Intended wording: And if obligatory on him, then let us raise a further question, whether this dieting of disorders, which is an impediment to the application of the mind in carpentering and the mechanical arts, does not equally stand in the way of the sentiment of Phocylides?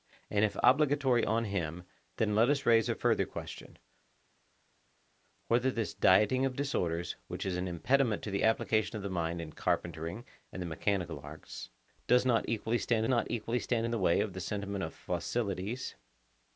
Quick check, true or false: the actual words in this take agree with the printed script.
false